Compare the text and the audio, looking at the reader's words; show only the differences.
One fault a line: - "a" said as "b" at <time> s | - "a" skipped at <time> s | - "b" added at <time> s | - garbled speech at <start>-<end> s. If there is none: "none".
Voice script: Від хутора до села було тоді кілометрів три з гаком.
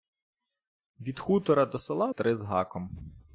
- "було тоді кілометрів" skipped at 2.1 s